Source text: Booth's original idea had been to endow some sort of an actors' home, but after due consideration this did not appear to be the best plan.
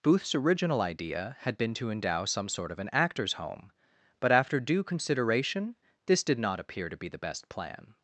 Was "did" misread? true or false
false